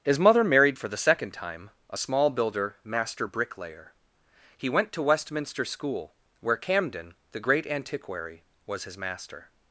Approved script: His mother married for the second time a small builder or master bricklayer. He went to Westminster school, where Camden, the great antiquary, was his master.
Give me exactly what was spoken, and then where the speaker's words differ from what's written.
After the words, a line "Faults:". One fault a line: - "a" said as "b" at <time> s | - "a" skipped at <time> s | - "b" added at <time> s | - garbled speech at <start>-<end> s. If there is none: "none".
His mother married for the second time a small builder master bricklayer. He went to Westminster school, where Camden, the great antiquary, was his master.
Faults:
- "or" skipped at 2.8 s